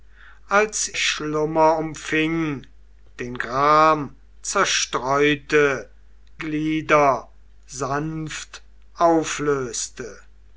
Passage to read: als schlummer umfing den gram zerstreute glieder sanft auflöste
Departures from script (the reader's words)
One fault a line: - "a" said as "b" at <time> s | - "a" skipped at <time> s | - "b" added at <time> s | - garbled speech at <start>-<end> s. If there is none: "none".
none